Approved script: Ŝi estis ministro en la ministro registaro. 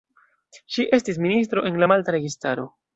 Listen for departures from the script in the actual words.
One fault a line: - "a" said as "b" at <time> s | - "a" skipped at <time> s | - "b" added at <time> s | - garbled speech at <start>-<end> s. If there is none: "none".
- "ministro" said as "malta" at 1.9 s